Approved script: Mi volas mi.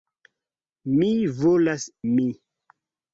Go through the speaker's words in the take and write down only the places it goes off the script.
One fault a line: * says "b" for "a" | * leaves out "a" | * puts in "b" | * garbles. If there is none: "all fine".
all fine